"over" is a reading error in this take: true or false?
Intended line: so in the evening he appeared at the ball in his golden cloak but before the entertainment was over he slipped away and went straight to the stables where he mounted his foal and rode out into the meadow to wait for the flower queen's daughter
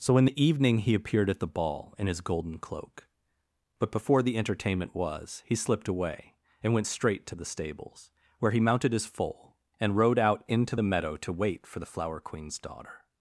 true